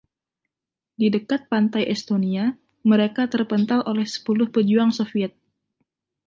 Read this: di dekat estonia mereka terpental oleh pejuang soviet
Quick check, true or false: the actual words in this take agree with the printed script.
false